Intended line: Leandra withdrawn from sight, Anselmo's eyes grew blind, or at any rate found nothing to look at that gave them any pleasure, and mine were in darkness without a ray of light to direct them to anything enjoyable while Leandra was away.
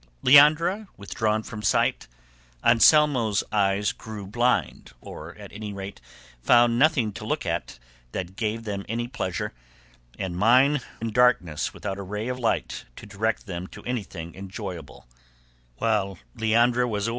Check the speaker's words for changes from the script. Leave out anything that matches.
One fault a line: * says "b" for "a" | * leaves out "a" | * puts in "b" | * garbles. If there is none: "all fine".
* leaves out "were"